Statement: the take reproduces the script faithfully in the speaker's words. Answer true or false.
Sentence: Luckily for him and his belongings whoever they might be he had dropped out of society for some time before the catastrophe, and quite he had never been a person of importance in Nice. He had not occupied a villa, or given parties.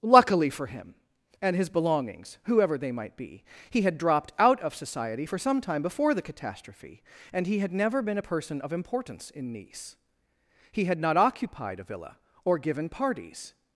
false